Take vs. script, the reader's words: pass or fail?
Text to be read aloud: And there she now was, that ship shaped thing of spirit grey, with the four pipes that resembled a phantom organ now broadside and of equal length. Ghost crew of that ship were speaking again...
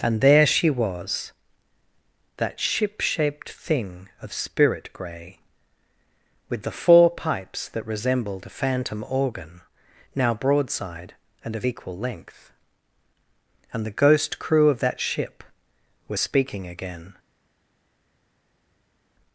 fail